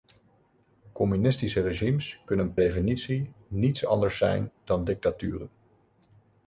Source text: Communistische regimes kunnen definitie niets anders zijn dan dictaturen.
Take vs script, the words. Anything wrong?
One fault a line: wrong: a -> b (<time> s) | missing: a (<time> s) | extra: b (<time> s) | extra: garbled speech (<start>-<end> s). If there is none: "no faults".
no faults